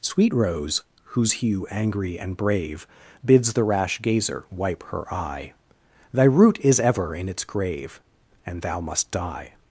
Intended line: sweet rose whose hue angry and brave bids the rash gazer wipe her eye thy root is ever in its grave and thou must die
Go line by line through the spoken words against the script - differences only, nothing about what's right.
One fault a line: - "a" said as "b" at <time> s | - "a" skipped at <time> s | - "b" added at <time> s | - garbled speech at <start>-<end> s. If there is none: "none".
none